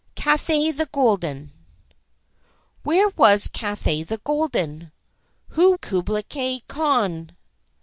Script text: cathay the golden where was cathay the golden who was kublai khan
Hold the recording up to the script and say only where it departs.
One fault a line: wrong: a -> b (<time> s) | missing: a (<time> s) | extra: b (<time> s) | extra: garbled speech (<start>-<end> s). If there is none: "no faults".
missing: was (5.7 s)